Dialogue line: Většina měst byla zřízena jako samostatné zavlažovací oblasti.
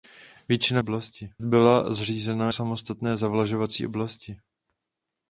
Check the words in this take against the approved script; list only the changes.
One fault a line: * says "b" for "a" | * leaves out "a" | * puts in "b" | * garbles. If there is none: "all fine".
* says "oblasti" for "měst"
* leaves out "jako"